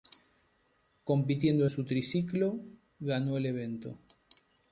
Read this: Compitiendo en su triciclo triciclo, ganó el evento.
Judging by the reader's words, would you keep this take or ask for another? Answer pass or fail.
fail